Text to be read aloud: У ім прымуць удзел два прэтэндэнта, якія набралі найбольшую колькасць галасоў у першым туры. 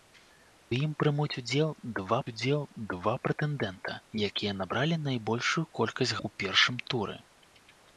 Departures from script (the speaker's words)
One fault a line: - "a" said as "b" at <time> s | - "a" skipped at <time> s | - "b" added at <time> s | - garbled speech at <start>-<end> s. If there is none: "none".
- "удзел два" added at 2.3 s
- "галасоў" skipped at 6.2 s